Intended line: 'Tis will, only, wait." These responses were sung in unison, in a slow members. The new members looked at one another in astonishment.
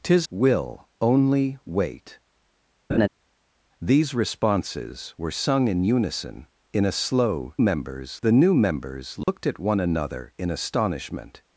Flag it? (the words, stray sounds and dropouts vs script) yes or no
yes